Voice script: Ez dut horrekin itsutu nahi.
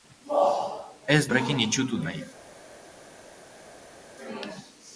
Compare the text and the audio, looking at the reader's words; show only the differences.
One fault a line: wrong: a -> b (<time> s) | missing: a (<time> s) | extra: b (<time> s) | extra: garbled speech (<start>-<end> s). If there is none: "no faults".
missing: dut (1.2 s)